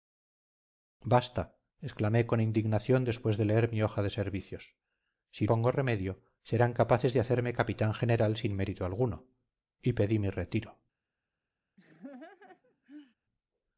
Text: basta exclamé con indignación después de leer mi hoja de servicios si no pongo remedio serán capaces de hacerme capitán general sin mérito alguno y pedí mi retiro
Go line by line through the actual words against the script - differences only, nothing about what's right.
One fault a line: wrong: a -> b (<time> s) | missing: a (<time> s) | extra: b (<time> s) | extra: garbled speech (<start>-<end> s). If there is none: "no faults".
missing: no (5.5 s)